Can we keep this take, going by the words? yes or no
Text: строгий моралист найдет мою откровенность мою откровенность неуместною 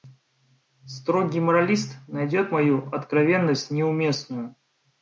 no